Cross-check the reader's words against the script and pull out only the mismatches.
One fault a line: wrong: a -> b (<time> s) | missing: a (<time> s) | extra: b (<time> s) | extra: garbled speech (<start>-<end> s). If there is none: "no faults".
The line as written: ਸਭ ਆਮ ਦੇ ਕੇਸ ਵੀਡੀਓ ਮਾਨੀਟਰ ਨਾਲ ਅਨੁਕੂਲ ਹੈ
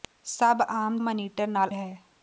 missing: ਦੇ ਕੇਸ ਵੀਡੀਓ (0.9 s)
missing: ਅਨੁਕੂਲ (1.7 s)